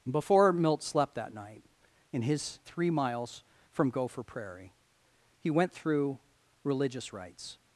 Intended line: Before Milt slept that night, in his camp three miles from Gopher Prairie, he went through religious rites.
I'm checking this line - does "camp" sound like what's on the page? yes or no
no